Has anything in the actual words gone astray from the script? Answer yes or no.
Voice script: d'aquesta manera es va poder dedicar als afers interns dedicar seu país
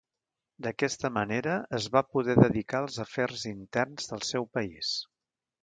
yes